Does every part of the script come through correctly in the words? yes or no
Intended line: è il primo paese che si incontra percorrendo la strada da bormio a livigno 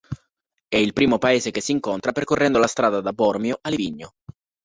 yes